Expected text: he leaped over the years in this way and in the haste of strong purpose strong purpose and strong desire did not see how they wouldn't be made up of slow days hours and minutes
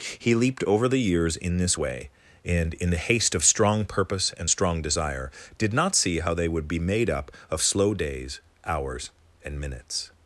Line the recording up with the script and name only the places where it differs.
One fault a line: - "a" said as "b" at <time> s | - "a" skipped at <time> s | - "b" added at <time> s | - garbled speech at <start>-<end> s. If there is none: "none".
- "strong purpose" skipped at 4.3 s
- "wouldn't" said as "would" at 6.5 s